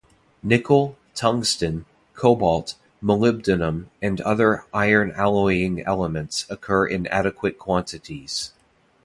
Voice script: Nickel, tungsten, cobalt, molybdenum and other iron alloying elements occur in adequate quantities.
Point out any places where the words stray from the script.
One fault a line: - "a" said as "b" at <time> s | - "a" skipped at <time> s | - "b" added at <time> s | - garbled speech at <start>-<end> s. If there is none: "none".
none